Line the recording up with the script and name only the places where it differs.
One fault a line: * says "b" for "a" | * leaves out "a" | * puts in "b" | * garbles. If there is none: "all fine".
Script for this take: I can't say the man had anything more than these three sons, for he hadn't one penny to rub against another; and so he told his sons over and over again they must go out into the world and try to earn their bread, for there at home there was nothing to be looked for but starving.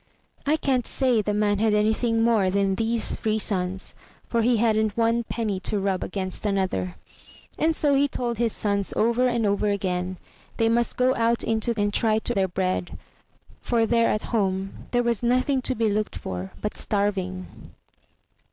* leaves out "the world"
* leaves out "earn"